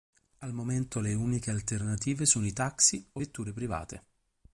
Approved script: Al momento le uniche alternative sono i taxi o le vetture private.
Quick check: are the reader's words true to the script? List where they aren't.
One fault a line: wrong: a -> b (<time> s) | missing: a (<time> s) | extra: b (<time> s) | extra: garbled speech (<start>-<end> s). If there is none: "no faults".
missing: le (3.2 s)